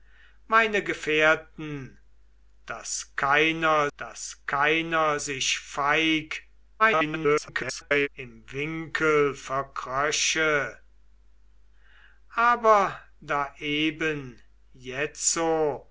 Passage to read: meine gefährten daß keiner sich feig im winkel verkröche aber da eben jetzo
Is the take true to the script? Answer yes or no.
no